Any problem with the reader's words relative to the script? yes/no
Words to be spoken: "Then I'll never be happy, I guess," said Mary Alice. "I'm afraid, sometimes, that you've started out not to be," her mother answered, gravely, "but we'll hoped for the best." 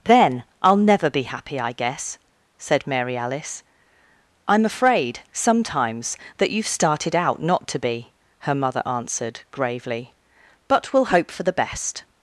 yes